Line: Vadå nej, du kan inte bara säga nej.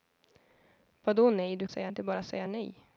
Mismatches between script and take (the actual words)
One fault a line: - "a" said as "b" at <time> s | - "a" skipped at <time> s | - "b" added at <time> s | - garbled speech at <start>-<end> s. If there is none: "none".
- "kan" said as "säga" at 1.7 s